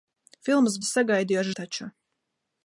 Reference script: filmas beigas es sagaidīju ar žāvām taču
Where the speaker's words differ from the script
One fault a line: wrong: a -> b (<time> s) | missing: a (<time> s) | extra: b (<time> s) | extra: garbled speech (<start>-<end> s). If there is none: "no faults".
missing: beigas (0.8 s)
missing: žāvām (1.5 s)